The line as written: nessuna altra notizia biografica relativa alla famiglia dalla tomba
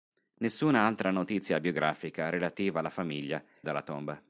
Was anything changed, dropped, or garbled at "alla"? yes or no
no